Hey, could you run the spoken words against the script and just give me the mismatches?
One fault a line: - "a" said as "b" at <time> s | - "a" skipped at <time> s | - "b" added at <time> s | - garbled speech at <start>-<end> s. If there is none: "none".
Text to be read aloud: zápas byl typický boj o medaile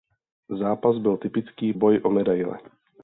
none